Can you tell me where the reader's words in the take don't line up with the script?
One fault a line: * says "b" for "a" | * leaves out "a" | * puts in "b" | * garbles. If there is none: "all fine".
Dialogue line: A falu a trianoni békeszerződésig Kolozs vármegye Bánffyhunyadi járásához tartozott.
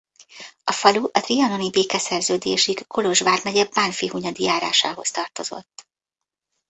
all fine